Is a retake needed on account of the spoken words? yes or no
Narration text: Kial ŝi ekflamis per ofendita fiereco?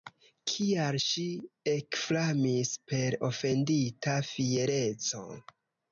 no